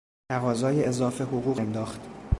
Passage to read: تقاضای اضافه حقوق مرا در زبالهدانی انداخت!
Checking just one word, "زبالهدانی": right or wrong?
wrong